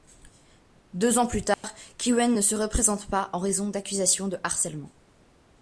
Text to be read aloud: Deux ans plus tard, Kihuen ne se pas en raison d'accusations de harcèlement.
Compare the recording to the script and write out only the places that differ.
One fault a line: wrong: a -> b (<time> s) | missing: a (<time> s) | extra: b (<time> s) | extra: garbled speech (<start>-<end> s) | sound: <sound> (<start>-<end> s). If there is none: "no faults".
sound: dropout (1.5-1.6 s)
extra: représente (2.6 s)